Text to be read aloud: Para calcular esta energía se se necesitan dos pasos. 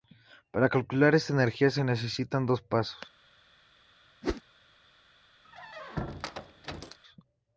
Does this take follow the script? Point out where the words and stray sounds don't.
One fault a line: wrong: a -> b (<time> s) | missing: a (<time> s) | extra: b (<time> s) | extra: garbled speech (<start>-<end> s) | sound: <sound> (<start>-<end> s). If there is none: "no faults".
missing: se (1.8 s)
sound: whoosh (4.2-4.4 s)
sound: squeak (5.4-7.0 s)